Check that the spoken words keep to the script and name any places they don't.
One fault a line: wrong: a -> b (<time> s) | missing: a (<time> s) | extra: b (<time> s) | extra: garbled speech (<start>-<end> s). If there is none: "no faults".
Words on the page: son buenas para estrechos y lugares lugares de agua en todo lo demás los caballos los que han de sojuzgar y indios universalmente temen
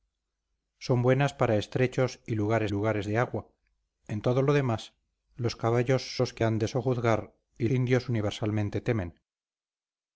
no faults